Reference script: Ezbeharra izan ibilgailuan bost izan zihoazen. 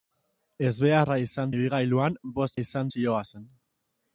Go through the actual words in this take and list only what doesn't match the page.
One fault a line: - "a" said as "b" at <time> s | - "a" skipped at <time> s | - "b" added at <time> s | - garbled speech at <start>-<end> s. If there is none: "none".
none